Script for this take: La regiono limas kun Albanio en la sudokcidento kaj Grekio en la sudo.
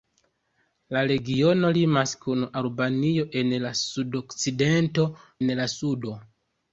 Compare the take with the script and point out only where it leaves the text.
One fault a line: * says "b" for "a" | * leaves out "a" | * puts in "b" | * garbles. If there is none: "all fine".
* leaves out "kaj Grekio"